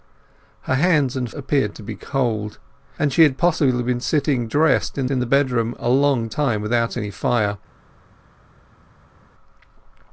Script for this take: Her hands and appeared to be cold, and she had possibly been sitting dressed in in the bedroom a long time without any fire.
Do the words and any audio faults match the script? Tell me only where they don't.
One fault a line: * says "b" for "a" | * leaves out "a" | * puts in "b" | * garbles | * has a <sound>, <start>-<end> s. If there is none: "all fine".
all fine